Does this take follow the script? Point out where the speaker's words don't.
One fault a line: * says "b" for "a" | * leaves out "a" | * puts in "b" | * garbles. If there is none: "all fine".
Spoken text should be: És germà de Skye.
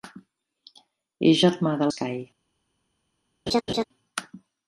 all fine